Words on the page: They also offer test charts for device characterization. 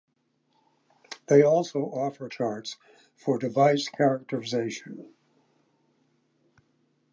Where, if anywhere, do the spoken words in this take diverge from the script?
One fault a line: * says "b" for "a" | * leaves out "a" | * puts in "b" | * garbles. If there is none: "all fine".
* leaves out "test"